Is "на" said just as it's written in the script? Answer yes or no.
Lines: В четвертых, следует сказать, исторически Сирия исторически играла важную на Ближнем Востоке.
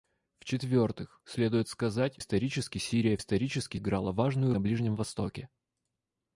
yes